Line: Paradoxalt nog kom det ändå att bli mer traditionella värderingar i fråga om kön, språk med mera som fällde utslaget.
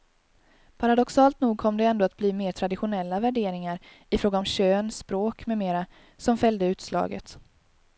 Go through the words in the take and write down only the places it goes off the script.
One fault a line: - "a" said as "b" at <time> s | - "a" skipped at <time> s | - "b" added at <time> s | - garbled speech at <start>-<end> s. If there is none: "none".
none